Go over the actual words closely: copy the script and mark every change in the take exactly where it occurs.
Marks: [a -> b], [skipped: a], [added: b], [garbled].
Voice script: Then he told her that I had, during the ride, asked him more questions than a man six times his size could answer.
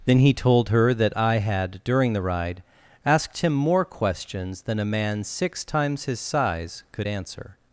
Then he told her that I had, during the ride, asked him more questions than a man six times his size could answer.